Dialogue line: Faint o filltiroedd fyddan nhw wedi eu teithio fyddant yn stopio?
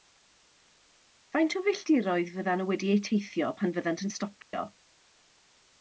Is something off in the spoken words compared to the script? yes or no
yes